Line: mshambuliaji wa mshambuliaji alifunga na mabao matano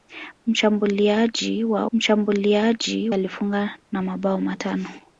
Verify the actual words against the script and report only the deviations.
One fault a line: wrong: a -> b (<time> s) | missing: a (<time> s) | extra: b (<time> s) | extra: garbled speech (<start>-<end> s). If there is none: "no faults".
no faults